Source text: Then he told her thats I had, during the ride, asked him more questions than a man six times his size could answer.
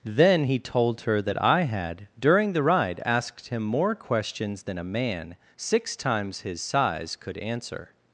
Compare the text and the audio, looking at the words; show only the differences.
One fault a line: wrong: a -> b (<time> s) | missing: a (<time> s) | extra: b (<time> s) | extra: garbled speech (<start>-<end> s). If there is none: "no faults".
wrong: thats -> that (1.2 s)